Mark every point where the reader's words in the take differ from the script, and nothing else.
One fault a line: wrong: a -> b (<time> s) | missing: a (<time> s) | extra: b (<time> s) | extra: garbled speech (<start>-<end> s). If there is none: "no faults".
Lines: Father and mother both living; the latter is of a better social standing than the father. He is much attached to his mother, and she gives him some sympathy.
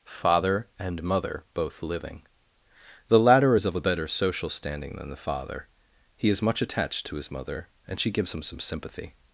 no faults